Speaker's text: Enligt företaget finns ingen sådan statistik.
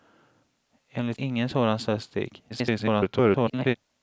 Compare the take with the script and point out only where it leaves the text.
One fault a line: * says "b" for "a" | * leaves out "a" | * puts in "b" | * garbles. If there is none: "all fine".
* leaves out "företaget finns"
* garbles